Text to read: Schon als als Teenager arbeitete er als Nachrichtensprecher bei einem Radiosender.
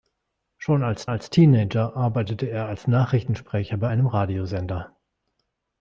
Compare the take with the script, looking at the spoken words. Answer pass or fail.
pass